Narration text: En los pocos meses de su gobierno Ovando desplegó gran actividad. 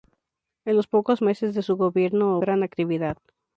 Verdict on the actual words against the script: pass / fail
fail